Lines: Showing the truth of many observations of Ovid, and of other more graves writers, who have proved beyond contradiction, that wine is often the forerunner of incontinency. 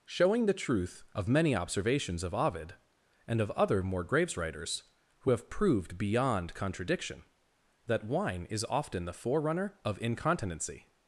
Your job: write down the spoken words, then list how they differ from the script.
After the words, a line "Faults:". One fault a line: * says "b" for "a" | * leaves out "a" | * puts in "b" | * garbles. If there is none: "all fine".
Showing the truth of many observations of Ovid, and of other more graves writers, who have proved beyond contradiction, that wine is often the forerunner of incontinency.
Faults:
all fine